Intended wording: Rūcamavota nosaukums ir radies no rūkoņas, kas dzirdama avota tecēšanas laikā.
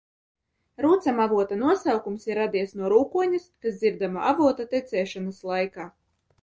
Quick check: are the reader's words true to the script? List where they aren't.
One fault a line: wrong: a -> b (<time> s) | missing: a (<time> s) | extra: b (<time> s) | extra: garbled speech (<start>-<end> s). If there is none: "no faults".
no faults